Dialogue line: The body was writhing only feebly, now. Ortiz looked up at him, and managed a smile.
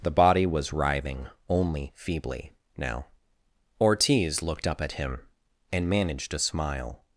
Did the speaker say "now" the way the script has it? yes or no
yes